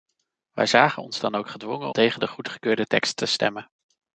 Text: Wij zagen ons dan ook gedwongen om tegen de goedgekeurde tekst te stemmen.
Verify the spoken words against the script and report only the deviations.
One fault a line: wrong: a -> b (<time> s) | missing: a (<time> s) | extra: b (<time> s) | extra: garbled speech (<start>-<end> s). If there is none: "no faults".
missing: om (1.9 s)